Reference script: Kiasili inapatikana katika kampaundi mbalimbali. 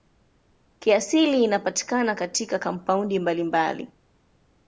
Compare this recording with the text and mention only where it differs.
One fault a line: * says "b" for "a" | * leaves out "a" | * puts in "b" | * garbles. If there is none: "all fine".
all fine